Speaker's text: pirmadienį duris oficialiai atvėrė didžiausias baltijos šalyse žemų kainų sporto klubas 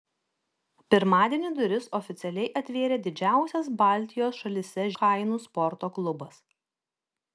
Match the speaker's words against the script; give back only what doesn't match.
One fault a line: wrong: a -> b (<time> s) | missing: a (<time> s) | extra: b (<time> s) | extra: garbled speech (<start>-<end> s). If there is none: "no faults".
missing: žemų (4.9 s)